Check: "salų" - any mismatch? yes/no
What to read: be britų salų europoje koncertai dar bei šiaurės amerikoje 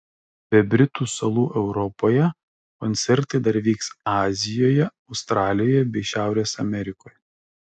no